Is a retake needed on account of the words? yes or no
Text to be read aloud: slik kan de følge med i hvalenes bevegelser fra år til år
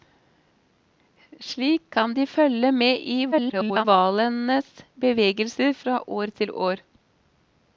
yes